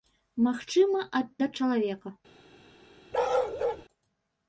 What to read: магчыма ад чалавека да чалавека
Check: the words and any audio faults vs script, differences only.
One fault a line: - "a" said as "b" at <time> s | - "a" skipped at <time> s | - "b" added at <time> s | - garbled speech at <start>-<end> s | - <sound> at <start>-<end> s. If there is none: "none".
- "чалавека" skipped at 1.3 s
- bark at 3.1-3.8 s